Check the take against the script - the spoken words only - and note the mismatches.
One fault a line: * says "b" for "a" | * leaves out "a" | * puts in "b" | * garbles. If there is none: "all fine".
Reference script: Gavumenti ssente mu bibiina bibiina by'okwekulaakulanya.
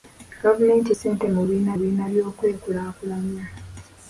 all fine